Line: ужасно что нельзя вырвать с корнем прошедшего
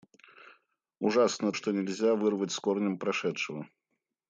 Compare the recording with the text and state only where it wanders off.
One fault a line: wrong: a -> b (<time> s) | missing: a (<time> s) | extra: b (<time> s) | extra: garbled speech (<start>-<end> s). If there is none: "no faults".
no faults